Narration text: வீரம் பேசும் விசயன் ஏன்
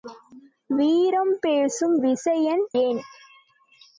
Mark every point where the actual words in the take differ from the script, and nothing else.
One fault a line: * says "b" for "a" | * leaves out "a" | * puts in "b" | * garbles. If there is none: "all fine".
all fine